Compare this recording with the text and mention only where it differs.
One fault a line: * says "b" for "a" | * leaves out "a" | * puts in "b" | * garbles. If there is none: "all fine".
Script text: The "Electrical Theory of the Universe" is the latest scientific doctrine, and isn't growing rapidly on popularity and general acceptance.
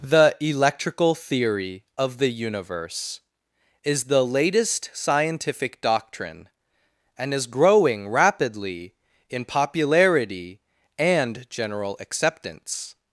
* says "is" for "isn't"
* says "in" for "on"